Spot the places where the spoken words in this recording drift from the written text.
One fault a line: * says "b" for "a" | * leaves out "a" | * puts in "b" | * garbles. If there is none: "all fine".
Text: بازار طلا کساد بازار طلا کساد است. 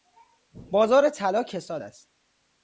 * leaves out "بازار طلا کساد"